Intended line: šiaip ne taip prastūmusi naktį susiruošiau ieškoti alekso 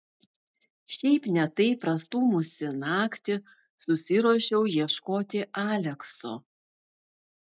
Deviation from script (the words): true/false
false